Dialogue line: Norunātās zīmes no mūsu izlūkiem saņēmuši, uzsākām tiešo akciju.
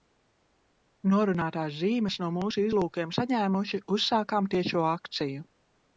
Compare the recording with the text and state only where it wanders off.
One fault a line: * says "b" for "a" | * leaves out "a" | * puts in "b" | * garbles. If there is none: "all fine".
all fine